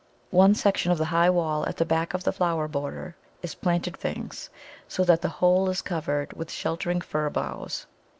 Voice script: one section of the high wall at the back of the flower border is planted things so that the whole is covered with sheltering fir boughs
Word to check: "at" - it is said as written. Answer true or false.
true